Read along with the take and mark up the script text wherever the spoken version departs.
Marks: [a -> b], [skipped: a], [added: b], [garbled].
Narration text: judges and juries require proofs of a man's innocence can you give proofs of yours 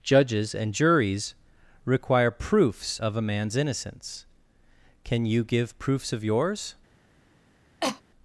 judges and juries require proofs of a man's innocence can you give proofs of yours